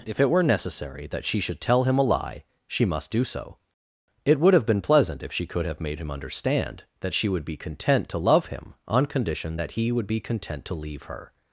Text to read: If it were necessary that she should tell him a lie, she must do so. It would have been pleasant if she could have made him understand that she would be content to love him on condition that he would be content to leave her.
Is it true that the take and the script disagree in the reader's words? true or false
false